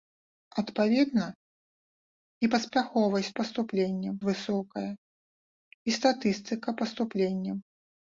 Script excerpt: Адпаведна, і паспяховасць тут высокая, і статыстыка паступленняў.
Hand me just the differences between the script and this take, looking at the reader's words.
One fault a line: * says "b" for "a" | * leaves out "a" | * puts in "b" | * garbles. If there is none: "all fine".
* says "паступленняў" for "тут"